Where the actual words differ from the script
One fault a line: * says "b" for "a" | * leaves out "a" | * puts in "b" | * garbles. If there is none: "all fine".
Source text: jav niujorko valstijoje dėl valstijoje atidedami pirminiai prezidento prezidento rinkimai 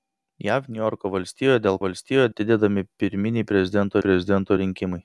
all fine